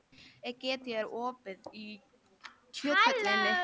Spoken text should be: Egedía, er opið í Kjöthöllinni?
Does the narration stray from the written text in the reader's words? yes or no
no